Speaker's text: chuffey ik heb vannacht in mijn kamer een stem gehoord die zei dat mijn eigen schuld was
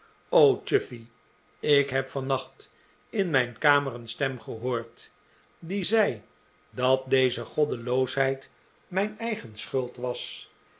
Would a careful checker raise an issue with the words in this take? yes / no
yes